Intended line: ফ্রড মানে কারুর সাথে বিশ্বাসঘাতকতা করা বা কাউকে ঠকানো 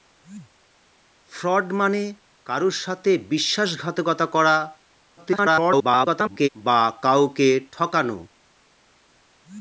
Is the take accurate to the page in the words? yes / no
no